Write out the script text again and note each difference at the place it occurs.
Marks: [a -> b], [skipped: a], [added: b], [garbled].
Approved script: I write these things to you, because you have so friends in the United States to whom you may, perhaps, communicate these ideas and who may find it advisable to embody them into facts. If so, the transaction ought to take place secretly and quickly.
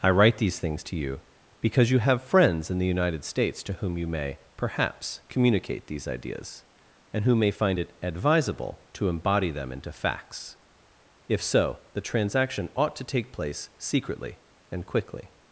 I write these things to you, because you have [skipped: so] friends in the United States to whom you may, perhaps, communicate these ideas and who may find it advisable to embody them into facts. If so, the transaction ought to take place secretly and quickly.